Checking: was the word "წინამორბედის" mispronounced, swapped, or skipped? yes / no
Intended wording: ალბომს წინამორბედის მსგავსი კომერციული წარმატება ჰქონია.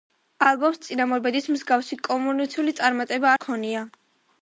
no